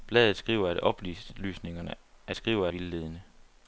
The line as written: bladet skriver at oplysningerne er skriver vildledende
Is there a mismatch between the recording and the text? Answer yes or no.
no